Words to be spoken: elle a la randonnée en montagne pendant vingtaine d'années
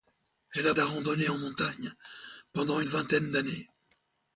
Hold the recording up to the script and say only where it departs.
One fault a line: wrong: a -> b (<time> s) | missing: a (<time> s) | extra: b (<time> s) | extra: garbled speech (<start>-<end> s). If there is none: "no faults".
no faults